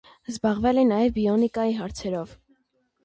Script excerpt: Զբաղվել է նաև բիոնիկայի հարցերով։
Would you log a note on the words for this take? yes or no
no